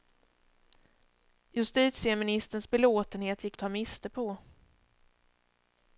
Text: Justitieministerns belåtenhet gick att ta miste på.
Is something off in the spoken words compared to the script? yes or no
no